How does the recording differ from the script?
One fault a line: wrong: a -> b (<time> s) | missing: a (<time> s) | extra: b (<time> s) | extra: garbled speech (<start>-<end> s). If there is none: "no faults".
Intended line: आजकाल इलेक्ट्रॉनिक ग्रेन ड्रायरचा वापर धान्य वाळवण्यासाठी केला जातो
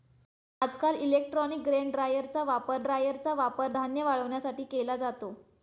extra: ड्रायरचा वापर (2.8 s)